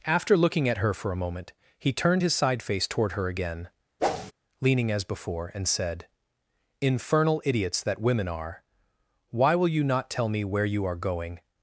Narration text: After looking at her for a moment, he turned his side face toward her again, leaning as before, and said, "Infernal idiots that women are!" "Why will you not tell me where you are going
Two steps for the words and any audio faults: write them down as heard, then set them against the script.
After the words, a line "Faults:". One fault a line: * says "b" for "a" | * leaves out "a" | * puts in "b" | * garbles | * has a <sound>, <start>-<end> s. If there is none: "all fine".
After looking at her for a moment, he turned his side face toward her again, leaning as before, and said, "Infernal idiots that women are!" "Why will you not tell me where you are going
Faults:
* has a whoosh, 4.0-4.3 s